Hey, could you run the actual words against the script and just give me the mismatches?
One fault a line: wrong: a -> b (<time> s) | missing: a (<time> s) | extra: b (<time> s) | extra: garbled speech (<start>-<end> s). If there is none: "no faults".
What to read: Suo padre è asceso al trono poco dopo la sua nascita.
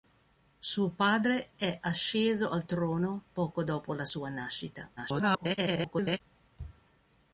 extra: garbled speech (5.0-6.2 s)